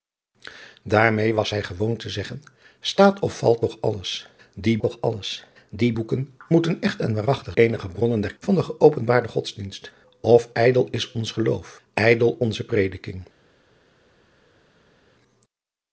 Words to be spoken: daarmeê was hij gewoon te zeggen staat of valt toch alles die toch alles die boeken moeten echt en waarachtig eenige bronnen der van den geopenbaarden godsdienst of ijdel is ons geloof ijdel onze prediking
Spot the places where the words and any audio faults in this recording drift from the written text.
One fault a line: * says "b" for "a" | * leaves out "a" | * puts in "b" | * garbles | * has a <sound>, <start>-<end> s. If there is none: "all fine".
all fine